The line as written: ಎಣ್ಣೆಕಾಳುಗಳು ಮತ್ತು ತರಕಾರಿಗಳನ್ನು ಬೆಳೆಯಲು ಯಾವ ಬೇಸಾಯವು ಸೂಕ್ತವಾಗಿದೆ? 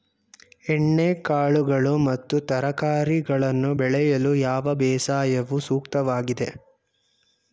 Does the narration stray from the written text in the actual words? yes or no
no